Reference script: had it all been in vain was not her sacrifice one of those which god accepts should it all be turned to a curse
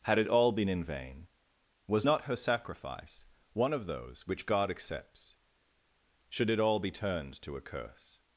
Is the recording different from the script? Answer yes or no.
no